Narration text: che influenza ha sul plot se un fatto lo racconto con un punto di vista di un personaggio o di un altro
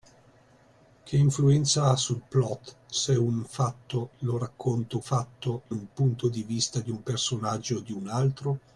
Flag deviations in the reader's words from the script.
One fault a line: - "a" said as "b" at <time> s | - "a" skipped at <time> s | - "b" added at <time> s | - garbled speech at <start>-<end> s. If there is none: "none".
- "con" said as "fatto" at 5.0 s